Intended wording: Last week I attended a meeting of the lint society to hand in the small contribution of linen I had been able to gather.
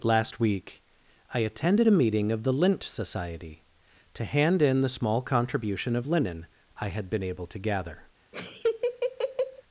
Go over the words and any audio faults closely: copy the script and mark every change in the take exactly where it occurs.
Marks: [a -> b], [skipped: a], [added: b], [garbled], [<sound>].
Last week I attended a meeting of the lint society to hand in the small contribution of linen I had been able to gather. [laugh]